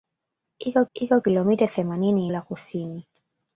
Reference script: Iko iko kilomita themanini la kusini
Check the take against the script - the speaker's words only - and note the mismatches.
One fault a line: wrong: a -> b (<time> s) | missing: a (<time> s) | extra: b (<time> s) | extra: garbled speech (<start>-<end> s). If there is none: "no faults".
no faults